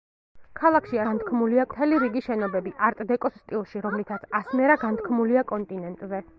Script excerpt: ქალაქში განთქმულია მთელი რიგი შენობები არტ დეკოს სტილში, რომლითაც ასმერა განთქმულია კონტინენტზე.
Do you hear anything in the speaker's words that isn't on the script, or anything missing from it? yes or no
no